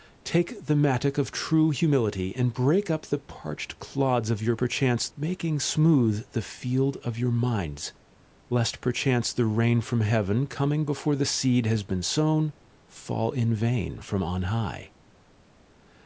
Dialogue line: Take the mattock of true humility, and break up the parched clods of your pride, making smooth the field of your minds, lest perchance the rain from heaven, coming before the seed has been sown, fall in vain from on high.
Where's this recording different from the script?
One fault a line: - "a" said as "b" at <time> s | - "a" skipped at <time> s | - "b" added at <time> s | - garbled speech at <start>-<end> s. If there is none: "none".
- "pride" said as "perchance" at 4.5 s